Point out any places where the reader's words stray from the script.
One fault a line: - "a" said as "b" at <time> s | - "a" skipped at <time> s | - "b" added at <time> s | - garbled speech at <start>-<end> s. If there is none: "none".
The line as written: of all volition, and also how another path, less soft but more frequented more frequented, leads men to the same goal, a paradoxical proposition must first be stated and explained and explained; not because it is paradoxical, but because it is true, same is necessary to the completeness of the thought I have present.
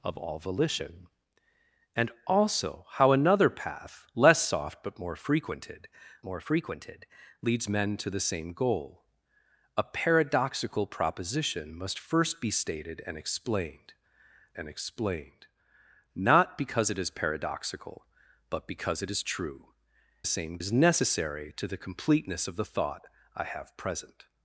none